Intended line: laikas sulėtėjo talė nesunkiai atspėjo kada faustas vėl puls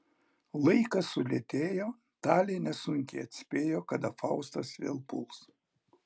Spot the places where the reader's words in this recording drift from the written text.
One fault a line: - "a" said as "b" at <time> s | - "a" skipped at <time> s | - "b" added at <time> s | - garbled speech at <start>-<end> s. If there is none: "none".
none